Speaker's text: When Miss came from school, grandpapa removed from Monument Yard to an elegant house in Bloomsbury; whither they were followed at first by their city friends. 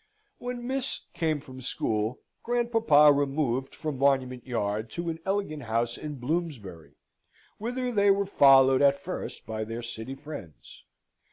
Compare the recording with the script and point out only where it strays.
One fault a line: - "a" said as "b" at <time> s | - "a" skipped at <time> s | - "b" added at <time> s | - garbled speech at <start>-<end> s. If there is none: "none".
none